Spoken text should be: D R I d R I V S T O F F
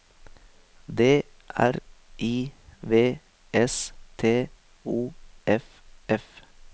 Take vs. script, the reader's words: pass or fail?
fail